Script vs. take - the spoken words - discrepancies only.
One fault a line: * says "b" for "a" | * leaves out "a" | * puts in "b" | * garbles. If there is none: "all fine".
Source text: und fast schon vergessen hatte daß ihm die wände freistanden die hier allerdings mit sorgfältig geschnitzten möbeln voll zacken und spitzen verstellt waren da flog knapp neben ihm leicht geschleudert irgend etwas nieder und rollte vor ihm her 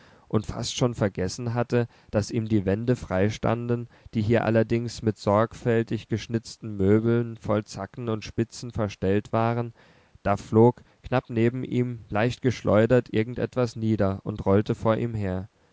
all fine